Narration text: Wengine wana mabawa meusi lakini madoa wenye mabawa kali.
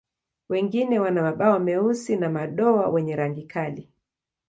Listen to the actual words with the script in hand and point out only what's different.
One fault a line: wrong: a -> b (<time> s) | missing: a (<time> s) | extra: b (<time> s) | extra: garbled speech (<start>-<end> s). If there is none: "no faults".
wrong: lakini -> na (2.1 s)
wrong: mabawa -> rangi (3.1 s)